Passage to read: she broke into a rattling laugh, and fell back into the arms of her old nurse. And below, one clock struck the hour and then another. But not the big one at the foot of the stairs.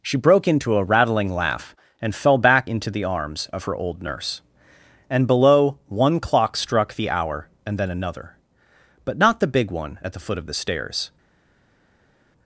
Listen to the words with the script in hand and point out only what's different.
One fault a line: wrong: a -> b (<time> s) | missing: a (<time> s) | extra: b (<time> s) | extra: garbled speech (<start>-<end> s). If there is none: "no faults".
no faults